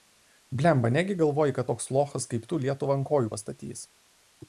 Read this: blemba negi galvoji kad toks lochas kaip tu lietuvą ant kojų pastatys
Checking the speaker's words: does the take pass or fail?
pass